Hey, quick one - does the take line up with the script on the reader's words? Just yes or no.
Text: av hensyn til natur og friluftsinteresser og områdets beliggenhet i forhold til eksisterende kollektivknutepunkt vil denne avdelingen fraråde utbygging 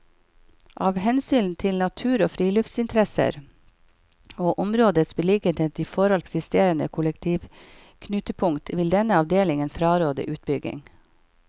no